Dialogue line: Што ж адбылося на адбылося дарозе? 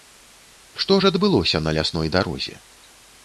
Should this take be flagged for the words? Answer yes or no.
yes